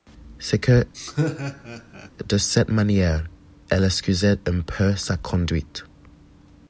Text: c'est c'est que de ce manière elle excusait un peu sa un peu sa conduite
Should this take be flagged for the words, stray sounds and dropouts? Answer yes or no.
yes